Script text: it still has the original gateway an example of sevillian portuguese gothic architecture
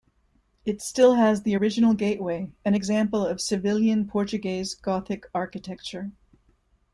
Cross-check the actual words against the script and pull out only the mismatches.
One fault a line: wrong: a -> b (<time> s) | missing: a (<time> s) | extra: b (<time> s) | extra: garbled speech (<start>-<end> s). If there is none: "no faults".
no faults